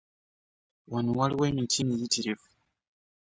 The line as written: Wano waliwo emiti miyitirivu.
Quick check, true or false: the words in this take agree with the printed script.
true